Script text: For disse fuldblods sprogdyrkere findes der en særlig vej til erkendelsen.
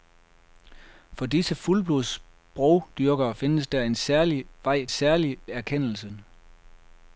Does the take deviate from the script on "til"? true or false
true